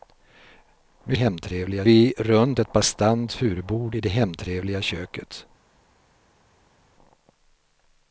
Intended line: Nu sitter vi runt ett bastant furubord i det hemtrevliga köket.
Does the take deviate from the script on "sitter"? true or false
true